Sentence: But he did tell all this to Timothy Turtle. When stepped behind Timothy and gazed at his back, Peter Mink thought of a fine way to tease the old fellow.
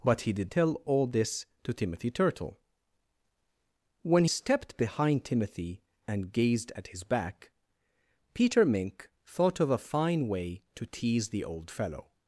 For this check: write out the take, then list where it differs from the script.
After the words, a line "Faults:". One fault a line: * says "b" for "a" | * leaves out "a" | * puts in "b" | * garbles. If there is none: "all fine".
But he did tell all this to Timothy Turtle. When stepped behind Timothy and gazed at his back, Peter Mink thought of a fine way to tease the old fellow.
Faults:
all fine